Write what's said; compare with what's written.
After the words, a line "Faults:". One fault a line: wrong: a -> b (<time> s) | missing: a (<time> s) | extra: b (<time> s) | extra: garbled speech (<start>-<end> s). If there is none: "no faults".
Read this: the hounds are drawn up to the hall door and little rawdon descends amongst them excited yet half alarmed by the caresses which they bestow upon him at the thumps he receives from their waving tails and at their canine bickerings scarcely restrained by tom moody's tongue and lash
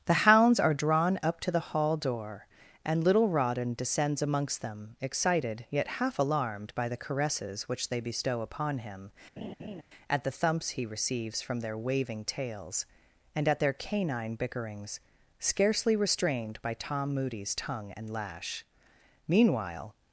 the hounds are drawn up to the hall door and little rawdon descends amongst them excited yet half alarmed by the caresses which they bestow upon him at the thumps he receives from their waving tails and at their canine bickerings scarcely restrained by tom moody's tongue and lash meanwhile
Faults:
extra: meanwhile (19.3 s)